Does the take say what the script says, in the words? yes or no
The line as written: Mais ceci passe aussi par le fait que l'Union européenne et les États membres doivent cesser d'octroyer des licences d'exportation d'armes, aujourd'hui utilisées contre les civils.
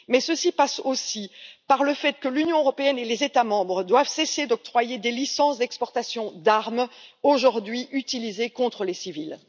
yes